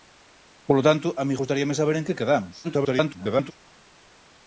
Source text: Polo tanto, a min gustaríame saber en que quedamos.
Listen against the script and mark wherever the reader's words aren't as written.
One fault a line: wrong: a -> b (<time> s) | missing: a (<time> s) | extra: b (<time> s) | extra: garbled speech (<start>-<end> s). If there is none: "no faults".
extra: garbled speech (2.6-3.5 s)